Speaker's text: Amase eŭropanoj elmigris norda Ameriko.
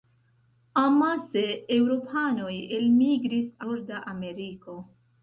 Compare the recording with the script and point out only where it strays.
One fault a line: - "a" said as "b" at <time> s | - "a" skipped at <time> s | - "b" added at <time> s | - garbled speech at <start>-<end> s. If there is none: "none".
none